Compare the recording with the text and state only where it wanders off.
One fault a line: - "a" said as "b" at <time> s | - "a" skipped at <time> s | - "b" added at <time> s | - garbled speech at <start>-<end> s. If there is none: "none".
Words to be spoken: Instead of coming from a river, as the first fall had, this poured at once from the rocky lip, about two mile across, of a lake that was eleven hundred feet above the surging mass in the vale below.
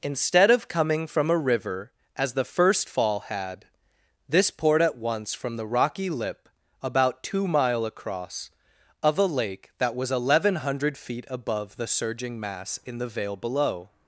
none